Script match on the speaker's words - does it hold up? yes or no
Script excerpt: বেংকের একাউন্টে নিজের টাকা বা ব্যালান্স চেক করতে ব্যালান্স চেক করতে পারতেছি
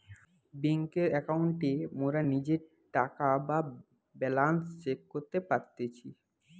no